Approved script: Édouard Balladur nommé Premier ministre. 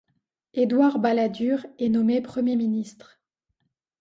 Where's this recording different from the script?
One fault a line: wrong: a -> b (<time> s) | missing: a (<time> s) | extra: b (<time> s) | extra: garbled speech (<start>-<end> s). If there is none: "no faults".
extra: est (1.8 s)